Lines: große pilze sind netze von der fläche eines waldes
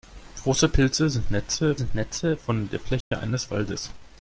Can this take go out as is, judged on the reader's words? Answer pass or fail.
fail